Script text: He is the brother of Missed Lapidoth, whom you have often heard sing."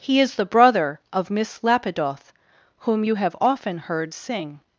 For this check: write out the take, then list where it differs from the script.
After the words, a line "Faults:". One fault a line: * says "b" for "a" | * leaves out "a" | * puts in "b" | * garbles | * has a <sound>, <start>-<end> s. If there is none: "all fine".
He is the brother of Miss Lapidoth, whom you have often heard sing."
Faults:
* says "Miss" for "Missed"